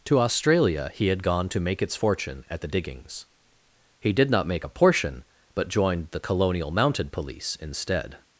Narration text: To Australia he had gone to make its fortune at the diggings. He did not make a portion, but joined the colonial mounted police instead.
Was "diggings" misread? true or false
false